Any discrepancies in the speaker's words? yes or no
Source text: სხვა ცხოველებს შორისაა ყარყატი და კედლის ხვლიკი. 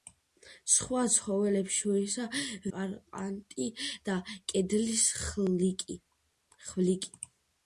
no